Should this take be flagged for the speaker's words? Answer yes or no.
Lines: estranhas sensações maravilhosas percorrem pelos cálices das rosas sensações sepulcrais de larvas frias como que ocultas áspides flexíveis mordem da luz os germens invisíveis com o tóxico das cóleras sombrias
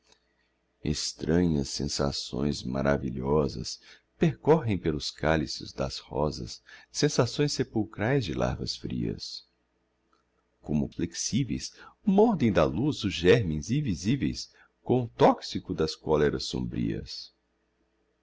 yes